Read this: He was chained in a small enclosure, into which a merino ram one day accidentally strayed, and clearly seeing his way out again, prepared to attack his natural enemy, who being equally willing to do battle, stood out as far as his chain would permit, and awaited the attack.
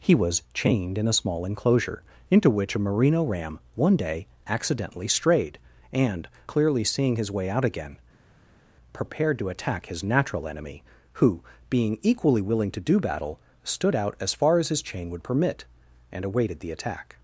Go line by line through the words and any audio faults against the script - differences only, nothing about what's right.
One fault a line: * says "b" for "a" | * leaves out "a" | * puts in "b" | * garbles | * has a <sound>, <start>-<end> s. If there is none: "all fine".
all fine